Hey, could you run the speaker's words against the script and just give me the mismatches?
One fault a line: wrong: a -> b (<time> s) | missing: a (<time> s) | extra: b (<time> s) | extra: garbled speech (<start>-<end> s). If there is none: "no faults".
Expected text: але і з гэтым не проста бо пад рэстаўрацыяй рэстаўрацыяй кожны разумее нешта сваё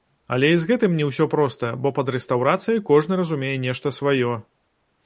extra: ўсё (1.1 s)
missing: рэстаўрацыяй (2.8 s)